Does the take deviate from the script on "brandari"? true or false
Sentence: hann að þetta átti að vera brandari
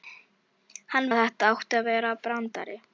false